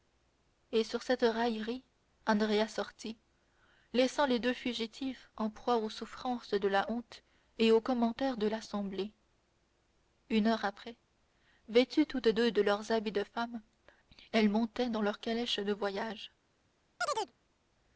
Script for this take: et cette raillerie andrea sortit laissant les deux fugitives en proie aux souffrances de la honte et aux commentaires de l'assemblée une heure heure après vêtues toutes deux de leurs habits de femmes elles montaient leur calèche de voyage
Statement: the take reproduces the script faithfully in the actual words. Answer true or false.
false